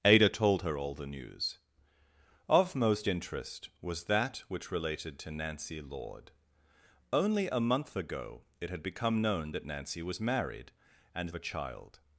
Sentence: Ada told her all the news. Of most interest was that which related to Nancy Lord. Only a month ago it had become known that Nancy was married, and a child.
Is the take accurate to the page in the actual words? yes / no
yes